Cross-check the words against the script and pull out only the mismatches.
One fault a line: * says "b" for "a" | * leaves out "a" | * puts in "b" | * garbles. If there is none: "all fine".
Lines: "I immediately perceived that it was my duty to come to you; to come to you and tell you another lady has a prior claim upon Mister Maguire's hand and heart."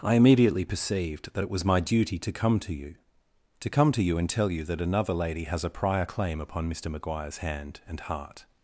* puts in "that"